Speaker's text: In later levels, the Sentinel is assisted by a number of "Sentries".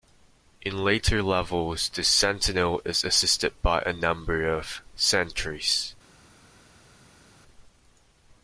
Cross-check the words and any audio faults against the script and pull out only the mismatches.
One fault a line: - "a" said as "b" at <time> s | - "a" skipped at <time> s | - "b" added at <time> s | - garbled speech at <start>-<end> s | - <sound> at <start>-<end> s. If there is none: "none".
none